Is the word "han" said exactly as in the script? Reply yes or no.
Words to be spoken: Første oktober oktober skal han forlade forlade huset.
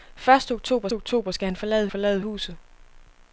yes